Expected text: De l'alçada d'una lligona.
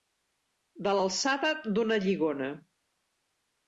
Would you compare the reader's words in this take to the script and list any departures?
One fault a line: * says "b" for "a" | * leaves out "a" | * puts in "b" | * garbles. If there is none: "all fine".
all fine